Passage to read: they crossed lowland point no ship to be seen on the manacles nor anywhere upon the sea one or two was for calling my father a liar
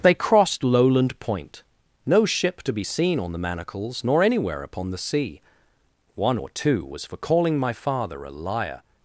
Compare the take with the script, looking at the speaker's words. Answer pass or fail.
pass